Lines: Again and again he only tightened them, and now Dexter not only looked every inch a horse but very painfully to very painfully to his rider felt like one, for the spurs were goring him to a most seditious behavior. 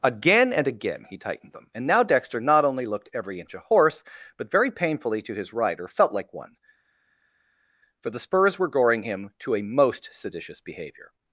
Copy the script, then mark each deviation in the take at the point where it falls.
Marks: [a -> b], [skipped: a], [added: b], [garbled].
Again and again he [skipped: only] tightened them, and now Dexter not only looked every inch a horse but very painfully to [skipped: very painfully to] his rider felt like one, for the spurs were goring him to a most seditious behavior.